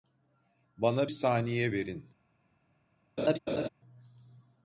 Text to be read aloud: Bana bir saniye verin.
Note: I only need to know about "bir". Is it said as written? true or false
false